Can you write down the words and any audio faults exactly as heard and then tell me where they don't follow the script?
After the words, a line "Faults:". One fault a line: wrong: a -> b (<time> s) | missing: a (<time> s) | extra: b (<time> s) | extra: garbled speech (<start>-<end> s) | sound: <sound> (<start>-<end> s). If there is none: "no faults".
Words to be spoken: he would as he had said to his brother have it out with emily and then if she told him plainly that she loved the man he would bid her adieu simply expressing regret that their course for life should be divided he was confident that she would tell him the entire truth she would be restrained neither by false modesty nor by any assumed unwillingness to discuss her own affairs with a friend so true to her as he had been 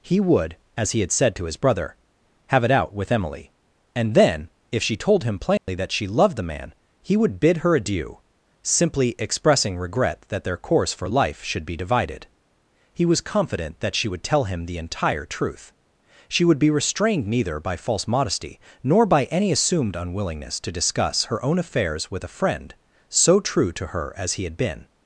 he would as he had said to his brother have it out with emily and then if she told him plainly that she loved the man he would bid her adieu simply expressing regret that their course for life should be divided he was confident that she would tell him the entire truth she would be restrained neither by false modesty nor by any assumed unwillingness to discuss her own affairs with a friend so true to her as he had been
Faults:
sound: dropout (5.6-5.7 s)